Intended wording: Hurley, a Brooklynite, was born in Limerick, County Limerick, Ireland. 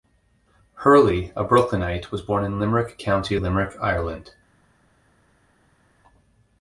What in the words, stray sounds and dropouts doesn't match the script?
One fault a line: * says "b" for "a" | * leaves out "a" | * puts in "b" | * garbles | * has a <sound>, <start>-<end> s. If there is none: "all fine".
all fine